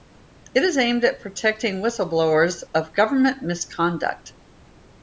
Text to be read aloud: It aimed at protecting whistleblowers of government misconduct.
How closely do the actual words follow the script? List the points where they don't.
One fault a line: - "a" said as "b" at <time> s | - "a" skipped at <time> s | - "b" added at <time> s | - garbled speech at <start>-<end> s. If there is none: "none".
- "is" added at 0.6 s